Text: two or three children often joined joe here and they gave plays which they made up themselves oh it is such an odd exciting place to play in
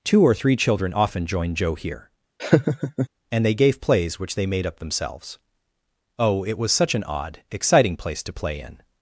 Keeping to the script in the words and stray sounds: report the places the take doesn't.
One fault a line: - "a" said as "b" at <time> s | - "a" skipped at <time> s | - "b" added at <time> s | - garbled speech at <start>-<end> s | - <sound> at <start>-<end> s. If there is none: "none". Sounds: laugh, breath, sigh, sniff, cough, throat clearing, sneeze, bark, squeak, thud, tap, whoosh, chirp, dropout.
- laugh at 2.4-3.1 s
- "is" said as "was" at 6.6 s